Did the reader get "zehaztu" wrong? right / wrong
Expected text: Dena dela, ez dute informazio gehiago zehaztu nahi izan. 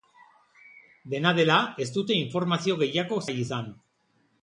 wrong